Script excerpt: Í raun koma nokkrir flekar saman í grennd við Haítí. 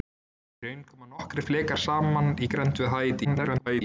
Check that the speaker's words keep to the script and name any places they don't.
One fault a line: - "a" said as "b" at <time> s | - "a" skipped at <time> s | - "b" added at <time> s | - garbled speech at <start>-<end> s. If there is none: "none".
- garbled speech at 3.2-3.8 s